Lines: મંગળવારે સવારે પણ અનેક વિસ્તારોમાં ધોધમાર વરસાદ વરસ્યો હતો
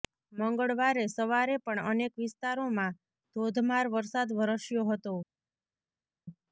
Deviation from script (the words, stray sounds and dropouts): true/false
false